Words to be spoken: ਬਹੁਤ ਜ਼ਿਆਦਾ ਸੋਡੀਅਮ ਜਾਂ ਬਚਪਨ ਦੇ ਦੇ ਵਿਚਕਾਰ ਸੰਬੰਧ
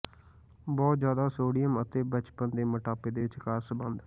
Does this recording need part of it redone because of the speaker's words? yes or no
yes